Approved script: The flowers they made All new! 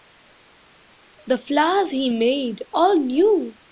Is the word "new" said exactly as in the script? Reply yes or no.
yes